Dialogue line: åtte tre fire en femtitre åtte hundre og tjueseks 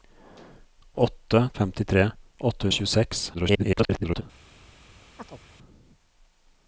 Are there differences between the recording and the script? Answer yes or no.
yes